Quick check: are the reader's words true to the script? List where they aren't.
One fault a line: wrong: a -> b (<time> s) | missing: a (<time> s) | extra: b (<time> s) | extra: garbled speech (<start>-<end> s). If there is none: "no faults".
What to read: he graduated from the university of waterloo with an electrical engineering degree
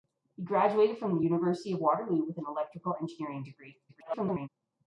extra: garbled speech (3.9-4.5 s)